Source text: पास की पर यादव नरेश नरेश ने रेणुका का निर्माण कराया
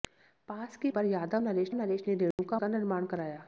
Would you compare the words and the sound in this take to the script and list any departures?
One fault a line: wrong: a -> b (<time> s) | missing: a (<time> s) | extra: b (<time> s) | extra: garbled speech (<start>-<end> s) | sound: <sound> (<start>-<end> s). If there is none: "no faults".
sound: dropout (2.3-2.4 s)